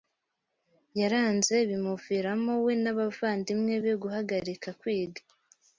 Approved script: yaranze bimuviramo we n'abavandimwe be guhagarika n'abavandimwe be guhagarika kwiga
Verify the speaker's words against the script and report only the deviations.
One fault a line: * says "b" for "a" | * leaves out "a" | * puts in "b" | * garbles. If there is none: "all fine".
* leaves out "n'abavandimwe be guhagarika"